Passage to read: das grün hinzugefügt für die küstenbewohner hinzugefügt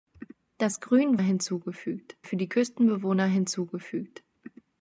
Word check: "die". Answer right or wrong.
right